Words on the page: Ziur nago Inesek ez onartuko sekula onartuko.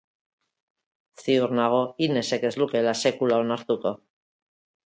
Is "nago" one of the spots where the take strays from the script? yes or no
no